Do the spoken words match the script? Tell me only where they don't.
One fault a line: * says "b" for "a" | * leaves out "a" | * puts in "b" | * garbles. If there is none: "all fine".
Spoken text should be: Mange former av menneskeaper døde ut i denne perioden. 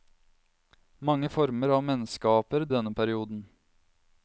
* leaves out "døde ut"